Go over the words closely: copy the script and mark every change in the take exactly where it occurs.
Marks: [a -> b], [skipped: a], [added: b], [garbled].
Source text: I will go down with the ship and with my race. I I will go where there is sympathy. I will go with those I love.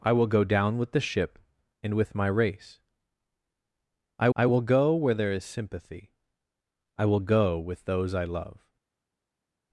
I will go down with the ship and with my race. I I will go where there is sympathy. I will go with those I love.